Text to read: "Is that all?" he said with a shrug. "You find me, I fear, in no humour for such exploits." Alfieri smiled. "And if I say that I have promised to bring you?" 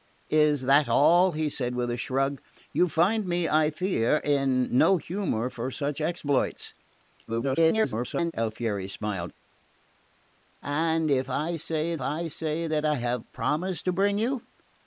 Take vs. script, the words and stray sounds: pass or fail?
fail